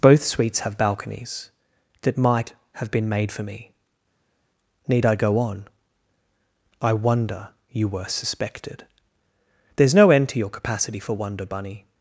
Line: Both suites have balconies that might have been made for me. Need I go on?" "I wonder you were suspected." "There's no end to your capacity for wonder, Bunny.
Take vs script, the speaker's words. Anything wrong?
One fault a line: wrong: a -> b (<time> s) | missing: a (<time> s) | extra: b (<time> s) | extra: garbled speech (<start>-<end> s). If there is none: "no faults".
no faults